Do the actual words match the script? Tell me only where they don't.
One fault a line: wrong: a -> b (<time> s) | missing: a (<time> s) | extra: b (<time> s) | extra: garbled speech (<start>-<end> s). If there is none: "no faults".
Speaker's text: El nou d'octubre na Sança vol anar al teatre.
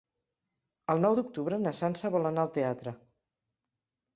no faults